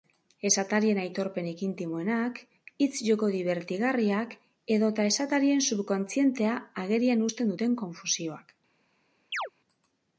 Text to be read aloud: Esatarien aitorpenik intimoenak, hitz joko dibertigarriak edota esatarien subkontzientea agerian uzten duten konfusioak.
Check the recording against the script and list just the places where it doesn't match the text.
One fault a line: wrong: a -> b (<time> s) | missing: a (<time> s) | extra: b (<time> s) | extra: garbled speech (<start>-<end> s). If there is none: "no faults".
no faults